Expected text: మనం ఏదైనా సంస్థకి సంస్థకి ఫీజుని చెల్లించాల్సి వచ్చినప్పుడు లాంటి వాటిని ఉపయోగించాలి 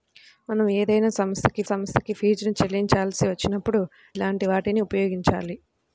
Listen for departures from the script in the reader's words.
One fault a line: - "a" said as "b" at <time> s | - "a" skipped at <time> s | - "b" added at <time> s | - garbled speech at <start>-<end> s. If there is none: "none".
none